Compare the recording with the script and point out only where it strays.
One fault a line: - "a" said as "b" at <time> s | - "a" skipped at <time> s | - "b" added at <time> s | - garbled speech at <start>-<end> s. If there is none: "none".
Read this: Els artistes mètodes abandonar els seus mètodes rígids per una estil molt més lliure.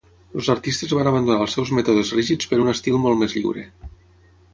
- "mètodes" said as "van" at 1.0 s
- "una" said as "un" at 2.6 s